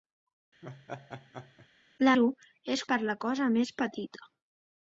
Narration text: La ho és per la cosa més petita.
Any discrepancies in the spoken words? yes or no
no